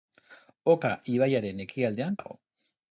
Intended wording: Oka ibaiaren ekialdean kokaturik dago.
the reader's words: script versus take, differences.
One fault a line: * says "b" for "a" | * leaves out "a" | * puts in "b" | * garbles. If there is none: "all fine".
* leaves out "kokaturik"